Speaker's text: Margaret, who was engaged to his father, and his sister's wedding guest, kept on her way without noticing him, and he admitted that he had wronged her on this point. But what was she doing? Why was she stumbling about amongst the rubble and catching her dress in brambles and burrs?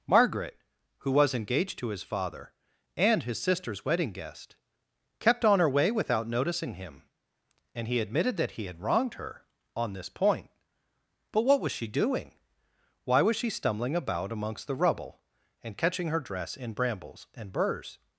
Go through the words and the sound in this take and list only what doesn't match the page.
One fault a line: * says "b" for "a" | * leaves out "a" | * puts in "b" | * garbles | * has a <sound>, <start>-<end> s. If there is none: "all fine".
all fine